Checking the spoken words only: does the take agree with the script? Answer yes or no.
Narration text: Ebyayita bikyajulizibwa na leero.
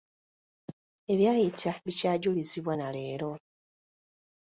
yes